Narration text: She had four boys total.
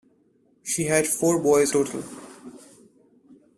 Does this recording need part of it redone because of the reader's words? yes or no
no